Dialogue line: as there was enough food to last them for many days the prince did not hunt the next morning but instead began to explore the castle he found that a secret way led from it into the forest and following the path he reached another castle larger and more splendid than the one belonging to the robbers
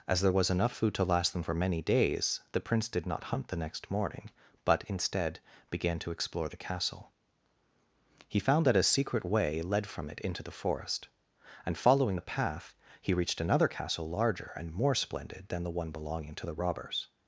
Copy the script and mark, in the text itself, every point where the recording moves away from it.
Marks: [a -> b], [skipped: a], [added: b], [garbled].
as there was enough food to last them for many days the prince did not hunt the next morning but instead began to explore the castle he found that a secret way led from it into the forest and following the path he reached another castle larger and more splendid than the one belonging to the robbers